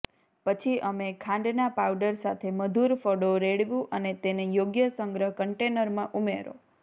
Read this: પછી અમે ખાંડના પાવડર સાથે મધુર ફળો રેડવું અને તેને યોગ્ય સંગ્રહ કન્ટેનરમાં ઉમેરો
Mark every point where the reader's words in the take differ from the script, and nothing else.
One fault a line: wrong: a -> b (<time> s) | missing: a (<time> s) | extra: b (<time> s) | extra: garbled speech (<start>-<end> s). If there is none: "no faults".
no faults